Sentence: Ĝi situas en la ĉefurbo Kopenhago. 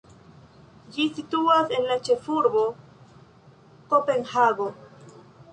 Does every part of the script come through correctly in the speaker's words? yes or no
yes